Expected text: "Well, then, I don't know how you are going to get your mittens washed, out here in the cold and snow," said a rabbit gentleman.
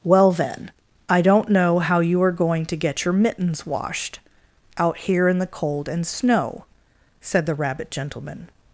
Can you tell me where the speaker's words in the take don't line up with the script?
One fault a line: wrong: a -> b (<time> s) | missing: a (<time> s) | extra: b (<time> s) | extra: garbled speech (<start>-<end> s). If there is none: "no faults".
wrong: a -> the (7.5 s)